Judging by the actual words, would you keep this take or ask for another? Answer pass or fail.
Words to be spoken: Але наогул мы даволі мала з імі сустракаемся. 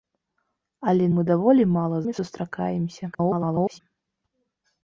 fail